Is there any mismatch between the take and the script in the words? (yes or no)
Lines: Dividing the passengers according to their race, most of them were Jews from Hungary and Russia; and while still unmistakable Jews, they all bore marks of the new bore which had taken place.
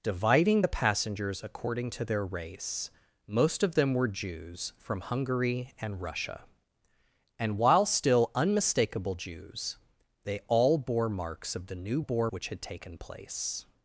no